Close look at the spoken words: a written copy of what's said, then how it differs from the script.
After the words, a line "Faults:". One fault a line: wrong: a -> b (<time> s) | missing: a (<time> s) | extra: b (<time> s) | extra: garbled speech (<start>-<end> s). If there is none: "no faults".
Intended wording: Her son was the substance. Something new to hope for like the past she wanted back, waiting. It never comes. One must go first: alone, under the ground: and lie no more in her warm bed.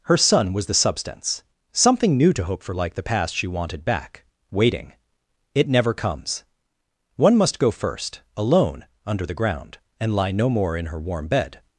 Her son was the substance. Something new to hope for like the past she wanted back, waiting. It never comes. One must go first: alone, under the ground: and lie no more in her warm bed.
Faults:
no faults